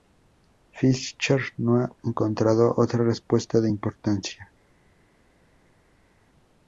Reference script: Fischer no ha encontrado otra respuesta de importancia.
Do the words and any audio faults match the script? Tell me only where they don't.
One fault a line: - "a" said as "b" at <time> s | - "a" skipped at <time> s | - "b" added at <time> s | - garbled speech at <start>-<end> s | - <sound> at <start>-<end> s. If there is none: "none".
none